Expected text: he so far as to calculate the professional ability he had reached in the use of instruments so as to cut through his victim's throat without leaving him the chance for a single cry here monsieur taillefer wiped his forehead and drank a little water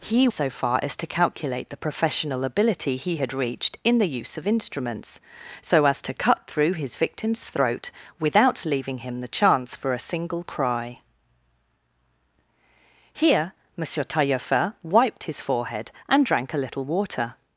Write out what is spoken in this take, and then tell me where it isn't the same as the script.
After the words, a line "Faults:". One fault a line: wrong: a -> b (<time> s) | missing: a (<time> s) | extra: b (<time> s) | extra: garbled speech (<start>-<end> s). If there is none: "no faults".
he so far as to calculate the professional ability he had reached in the use of instruments so as to cut through his victim's throat without leaving him the chance for a single cry here monsieur taillefer wiped his forehead and drank a little water
Faults:
no faults